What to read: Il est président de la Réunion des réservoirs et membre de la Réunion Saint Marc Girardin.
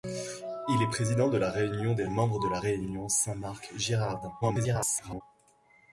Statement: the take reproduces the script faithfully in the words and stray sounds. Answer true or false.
false